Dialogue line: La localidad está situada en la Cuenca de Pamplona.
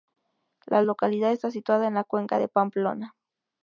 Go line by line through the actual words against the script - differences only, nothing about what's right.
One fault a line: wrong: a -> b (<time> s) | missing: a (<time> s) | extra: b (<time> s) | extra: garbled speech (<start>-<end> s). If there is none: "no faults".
no faults